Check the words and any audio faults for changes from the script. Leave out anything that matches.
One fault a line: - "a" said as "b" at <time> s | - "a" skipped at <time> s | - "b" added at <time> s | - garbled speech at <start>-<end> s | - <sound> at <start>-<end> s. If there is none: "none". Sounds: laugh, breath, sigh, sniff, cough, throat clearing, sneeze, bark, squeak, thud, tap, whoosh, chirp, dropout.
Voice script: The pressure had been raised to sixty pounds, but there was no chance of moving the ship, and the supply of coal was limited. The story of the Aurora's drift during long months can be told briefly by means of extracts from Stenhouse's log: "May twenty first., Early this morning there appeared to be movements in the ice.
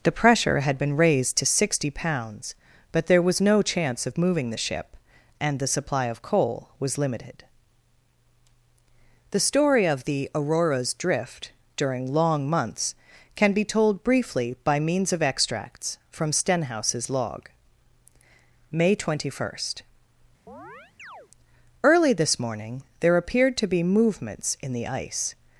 - chirp at 20.5-21.3 s